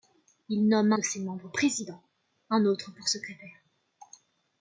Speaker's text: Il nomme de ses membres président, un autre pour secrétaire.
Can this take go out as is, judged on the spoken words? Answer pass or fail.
pass